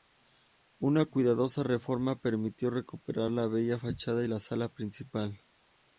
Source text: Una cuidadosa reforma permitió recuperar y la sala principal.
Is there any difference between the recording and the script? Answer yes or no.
yes